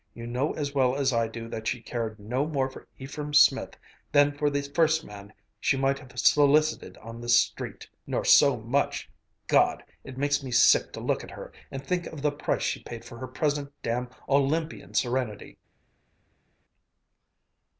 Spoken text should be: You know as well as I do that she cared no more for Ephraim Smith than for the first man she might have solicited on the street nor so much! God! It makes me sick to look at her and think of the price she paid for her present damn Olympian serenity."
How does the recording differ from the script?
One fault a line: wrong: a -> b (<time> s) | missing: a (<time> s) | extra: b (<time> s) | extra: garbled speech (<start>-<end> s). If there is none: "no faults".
no faults